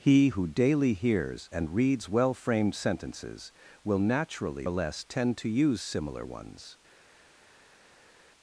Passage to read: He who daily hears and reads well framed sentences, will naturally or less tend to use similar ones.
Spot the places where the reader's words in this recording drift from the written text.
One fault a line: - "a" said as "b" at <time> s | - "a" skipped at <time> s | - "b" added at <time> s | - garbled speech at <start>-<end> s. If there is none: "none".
none